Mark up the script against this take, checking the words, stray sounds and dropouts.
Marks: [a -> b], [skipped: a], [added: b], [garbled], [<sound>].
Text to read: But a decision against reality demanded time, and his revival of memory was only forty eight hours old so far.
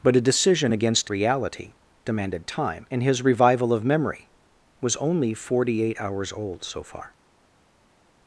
But a decision against reality demanded time, and his revival of memory was only forty eight hours old so far.